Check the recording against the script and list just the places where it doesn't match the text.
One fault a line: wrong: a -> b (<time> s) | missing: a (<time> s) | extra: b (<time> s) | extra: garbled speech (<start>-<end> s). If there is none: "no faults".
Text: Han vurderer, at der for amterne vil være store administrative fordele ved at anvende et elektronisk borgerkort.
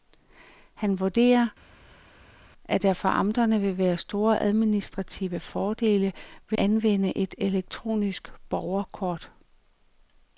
missing: at (6.6 s)